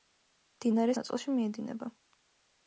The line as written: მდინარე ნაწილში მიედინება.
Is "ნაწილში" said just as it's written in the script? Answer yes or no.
yes